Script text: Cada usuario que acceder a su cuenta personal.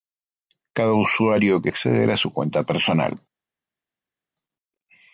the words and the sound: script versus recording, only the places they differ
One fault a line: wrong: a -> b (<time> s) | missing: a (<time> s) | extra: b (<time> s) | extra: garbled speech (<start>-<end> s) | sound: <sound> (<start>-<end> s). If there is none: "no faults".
no faults